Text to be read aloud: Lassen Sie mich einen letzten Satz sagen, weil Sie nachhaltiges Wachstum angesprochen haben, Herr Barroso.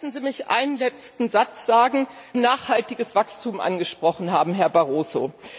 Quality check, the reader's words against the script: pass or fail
fail